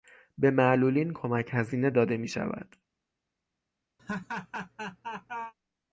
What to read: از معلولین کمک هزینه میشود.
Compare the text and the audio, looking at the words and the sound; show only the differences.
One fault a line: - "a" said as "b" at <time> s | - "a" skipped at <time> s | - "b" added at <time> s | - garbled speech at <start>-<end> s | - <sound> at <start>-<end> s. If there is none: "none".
- "از" said as "به" at 0.4 s
- "داده" added at 1.9 s
- laugh at 4.0-5.5 s